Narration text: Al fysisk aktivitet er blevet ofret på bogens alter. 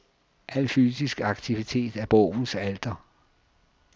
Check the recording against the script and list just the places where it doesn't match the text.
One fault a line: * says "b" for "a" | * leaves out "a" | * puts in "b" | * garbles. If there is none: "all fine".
* leaves out "blevet ofret på"